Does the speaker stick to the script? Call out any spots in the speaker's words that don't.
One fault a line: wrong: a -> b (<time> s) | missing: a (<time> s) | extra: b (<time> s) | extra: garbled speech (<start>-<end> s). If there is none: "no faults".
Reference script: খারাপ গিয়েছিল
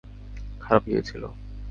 no faults